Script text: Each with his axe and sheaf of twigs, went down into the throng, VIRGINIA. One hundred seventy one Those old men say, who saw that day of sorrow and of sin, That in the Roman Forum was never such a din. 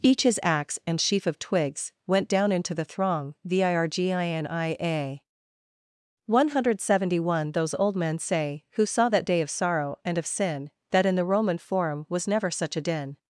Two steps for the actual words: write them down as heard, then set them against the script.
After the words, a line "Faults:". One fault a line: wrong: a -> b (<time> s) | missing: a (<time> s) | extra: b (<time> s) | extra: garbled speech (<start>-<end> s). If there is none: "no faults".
Each his axe and sheaf of twigs, went down into the throng, VIRGINIA. One hundred seventy one Those old men say, who saw that day of sorrow and of sin, That in the Roman Forum was never such a din.
Faults:
missing: with (0.2 s)